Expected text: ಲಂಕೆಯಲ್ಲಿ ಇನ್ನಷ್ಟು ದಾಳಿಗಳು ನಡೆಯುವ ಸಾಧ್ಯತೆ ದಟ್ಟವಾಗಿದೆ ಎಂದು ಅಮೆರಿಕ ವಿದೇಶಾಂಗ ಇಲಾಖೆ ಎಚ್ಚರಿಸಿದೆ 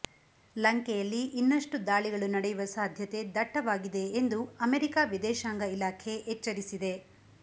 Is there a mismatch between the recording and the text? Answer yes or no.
no